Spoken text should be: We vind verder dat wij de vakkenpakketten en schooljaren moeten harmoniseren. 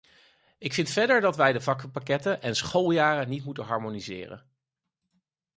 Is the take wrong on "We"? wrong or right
wrong